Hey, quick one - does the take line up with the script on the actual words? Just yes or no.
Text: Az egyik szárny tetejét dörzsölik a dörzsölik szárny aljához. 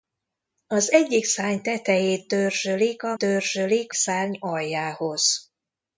yes